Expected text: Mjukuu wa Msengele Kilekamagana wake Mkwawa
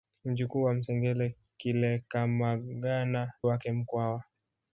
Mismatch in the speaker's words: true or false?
false